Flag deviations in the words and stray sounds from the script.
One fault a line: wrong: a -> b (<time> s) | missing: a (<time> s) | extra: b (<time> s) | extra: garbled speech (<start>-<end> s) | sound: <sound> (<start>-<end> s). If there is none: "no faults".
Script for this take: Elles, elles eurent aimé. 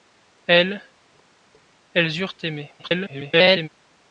extra: garbled speech (2.8-3.7 s)